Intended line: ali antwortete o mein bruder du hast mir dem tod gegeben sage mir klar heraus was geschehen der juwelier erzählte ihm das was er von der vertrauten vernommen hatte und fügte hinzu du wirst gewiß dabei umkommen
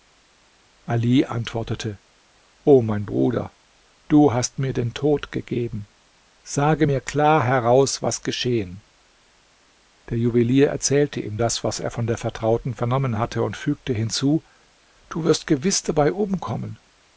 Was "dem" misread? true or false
true